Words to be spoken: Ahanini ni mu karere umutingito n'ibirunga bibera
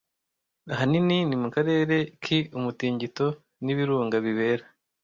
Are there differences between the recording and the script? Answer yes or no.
yes